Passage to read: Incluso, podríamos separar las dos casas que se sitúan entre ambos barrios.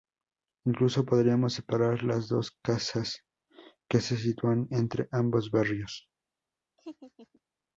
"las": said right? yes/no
yes